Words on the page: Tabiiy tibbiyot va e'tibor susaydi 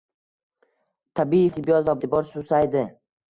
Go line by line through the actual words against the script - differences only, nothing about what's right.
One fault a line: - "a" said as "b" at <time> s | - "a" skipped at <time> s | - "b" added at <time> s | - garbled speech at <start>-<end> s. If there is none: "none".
none